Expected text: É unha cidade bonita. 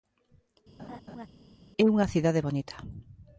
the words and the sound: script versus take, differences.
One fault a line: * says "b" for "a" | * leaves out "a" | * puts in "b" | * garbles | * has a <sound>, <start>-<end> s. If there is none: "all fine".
* has a laugh, 0.8-1.3 s